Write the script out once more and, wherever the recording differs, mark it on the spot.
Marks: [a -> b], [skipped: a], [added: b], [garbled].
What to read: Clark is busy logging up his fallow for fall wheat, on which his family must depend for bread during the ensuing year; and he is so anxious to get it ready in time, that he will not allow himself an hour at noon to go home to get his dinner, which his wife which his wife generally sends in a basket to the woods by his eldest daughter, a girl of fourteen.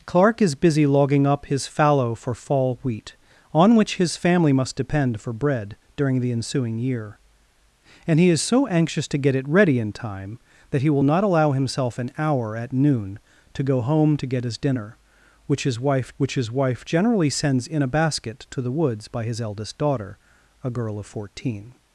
Clark is busy logging up his fallow for fall wheat, on which his family must depend for bread during the ensuing year; and he is so anxious to get it ready in time, that he will not allow himself an hour at noon to go home to get his dinner, which his wife which his wife generally sends in a basket to the woods by his eldest daughter, a girl of fourteen.